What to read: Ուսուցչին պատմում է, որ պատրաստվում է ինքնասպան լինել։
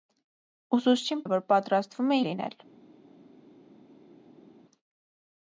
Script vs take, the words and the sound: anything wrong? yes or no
yes